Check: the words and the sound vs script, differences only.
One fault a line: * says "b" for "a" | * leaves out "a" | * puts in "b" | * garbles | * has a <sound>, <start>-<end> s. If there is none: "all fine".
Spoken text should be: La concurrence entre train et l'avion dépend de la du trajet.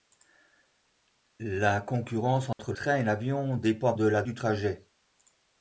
* has a dropout, 2.5-2.6 s